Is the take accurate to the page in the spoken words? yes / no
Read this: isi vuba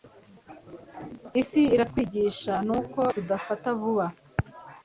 no